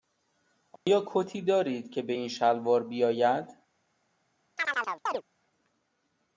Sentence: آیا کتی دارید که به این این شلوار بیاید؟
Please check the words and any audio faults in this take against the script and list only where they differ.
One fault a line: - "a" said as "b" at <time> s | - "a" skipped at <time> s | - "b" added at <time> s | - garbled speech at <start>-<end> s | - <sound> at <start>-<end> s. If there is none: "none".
- dropout at 0.8-0.9 s
- "این" skipped at 2.3 s
- chirp at 4.6-5.2 s